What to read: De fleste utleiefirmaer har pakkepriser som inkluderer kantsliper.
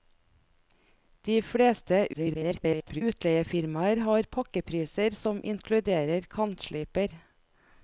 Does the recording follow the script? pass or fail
fail